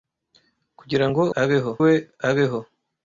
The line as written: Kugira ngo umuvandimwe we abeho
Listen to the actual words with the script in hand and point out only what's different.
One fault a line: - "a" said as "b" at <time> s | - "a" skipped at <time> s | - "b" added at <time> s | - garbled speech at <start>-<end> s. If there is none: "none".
- "umuvandimwe" said as "abeho" at 1.4 s